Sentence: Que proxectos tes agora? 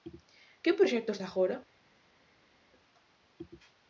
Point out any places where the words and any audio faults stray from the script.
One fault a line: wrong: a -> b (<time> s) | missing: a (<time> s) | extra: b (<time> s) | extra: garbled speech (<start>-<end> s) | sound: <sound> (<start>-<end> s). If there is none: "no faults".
missing: tes (1.2 s)